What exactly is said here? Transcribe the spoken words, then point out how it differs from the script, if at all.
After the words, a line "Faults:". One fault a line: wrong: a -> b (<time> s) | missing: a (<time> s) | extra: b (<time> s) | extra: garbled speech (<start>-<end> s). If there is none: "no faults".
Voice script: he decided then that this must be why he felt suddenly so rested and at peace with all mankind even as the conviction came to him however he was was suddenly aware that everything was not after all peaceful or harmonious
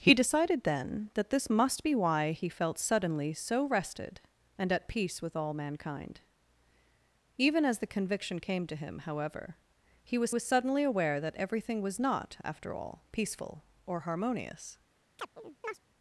he decided then that this must be why he felt suddenly so rested and at peace with all mankind even as the conviction came to him however he was was suddenly aware that everything was not after all peaceful or harmonious
Faults:
no faults